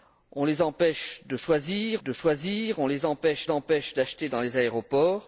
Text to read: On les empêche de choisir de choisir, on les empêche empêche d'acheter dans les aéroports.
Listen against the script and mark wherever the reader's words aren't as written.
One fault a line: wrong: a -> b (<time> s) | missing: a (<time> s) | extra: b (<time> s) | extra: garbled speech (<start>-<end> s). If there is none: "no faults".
no faults